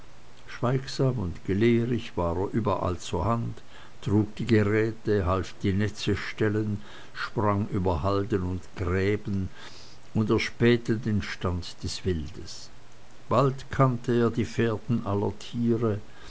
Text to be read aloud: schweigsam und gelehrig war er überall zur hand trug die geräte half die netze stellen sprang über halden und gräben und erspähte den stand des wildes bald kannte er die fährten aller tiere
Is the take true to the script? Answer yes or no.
yes